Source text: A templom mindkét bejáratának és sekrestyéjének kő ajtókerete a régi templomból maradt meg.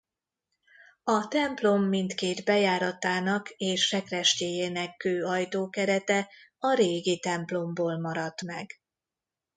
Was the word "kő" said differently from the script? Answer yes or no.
no